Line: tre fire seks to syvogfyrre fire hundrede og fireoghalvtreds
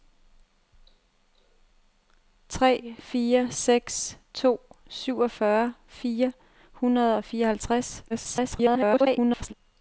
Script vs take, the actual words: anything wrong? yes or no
yes